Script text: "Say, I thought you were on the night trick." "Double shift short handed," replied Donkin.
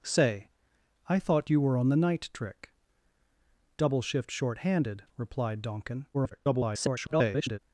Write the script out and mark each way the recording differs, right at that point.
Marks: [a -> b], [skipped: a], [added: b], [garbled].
"Say, I thought you were on the night trick." "Double shift short handed," replied Donkin. [garbled]